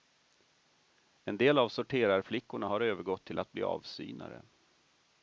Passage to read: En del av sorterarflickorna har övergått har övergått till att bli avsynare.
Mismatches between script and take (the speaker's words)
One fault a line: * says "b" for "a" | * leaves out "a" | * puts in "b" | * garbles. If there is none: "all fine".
* leaves out "har övergått"